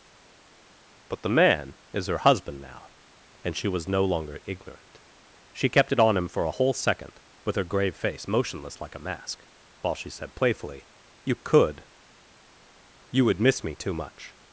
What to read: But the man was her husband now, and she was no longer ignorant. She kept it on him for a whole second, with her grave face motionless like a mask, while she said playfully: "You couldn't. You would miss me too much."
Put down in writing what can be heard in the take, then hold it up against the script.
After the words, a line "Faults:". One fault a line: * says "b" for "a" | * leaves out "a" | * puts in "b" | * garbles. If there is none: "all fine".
But the man is her husband now, and she was no longer ignorant. She kept it on him for a whole second, with her grave face motionless like a mask, while she said playfully: "You could. You would miss me too much."
Faults:
* says "is" for "was"
* says "could" for "couldn't"